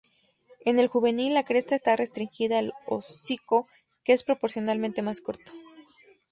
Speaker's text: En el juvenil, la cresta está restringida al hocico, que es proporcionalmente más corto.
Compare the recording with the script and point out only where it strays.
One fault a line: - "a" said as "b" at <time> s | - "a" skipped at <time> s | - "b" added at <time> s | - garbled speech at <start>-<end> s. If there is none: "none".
none